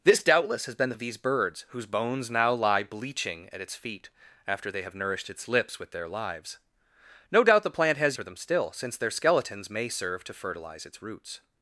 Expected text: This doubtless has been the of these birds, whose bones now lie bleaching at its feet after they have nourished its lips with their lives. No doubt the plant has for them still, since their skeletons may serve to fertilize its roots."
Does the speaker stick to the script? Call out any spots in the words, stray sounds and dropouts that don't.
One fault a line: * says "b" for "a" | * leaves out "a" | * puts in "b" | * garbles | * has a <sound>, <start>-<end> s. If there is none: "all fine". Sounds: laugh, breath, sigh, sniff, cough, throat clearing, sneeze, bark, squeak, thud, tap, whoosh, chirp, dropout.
all fine